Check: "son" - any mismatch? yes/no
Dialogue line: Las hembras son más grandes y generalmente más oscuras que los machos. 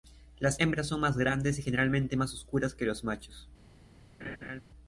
no